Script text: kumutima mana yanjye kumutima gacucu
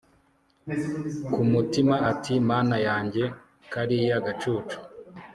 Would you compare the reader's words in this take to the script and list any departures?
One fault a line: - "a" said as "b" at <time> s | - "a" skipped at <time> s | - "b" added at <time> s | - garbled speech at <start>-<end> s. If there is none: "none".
- "ati" added at 2.1 s
- "kumutima" said as "kariya" at 3.7 s